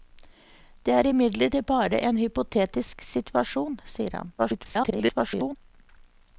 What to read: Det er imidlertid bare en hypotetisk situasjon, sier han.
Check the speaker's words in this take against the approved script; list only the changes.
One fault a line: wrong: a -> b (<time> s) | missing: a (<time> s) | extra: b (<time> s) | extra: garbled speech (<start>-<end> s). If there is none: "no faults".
extra: garbled speech (4.4-5.6 s)